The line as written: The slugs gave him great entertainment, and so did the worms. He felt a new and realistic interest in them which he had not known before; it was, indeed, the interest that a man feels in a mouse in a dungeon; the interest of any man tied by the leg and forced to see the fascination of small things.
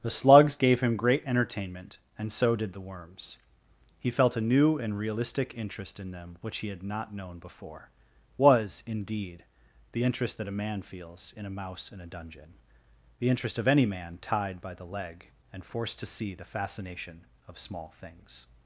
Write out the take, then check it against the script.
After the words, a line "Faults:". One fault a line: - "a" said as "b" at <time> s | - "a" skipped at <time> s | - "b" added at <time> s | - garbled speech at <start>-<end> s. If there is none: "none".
The slugs gave him great entertainment, and so did the worms. He felt a new and realistic interest in them which he had not known before; was, indeed, the interest that a man feels in a mouse in a dungeon; the interest of any man tied by the leg and forced to see the fascination of small things.
Faults:
- "it" skipped at 7.9 s